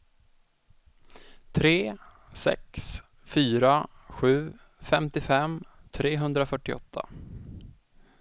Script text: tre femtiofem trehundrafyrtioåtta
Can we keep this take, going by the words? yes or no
no